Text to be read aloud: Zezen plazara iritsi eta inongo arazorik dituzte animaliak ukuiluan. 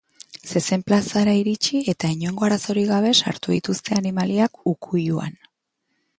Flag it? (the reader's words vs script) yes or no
yes